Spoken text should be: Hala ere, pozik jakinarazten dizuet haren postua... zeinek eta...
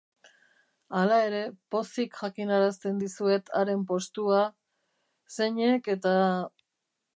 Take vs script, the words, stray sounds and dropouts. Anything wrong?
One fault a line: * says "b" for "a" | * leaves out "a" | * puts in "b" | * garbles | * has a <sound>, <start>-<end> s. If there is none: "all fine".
all fine